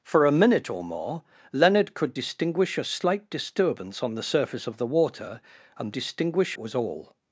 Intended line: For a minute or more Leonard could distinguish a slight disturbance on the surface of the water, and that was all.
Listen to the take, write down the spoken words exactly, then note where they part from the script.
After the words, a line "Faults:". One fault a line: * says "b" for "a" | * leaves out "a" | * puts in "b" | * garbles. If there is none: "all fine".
For a minute or more Leonard could distinguish a slight disturbance on the surface of the water, and distinguish was all.
Faults:
* says "distinguish" for "that"